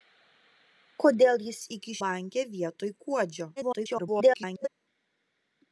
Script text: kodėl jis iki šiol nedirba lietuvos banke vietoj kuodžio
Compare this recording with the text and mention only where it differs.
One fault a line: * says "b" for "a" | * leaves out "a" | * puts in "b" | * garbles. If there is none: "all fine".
* leaves out "šiol nedirba lietuvos"
* garbles